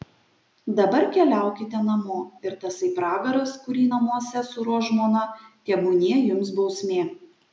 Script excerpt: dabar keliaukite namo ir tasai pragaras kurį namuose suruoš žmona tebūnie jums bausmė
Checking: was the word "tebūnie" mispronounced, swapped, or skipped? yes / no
no